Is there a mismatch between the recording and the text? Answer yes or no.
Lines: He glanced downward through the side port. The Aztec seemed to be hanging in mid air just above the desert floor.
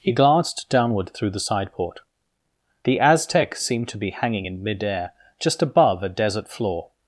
yes